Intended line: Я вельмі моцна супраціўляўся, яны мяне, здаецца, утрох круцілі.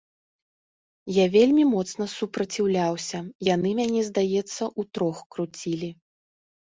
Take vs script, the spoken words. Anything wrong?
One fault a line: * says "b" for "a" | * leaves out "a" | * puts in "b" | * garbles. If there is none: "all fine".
all fine